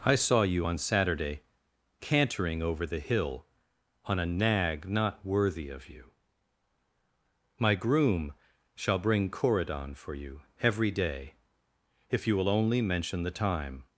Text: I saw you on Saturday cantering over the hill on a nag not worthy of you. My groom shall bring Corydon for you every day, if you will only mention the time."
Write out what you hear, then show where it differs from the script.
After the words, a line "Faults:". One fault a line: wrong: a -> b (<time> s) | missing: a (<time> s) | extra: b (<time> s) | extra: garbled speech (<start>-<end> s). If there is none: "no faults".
I saw you on Saturday cantering over the hill on a nag not worthy of you. My groom shall bring Corydon for you every day, if you will only mention the time."
Faults:
no faults